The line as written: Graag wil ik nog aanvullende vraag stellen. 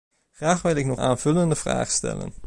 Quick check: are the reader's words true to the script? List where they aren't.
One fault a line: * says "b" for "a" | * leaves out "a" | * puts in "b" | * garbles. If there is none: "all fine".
all fine